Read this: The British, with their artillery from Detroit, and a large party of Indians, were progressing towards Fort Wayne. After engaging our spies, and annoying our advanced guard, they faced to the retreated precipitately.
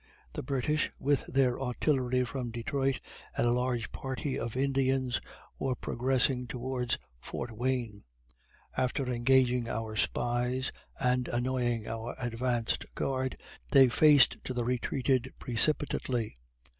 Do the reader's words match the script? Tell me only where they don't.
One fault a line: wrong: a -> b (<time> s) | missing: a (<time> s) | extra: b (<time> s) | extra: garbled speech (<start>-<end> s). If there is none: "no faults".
no faults